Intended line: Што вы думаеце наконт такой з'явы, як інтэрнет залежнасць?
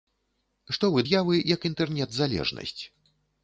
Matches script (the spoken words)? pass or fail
fail